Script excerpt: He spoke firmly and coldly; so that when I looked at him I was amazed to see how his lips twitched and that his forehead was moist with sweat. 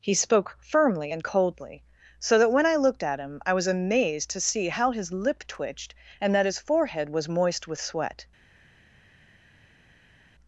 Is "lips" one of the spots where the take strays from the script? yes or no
yes